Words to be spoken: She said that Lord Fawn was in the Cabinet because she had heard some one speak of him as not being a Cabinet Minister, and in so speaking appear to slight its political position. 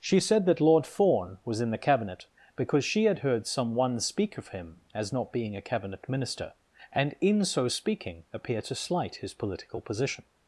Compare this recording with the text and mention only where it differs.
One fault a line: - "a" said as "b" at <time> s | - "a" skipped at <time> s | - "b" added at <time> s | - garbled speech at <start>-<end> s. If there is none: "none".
- "its" said as "his" at 9.2 s